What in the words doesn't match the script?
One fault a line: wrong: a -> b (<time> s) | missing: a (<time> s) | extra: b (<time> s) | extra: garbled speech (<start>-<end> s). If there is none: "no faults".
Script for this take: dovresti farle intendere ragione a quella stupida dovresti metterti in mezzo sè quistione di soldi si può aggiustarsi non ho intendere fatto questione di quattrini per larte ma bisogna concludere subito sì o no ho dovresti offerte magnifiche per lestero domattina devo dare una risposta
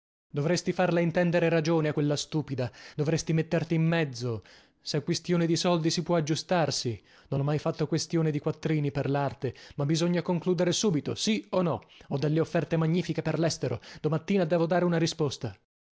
wrong: intendere -> mai (7.4 s)
wrong: dovresti -> delle (12.2 s)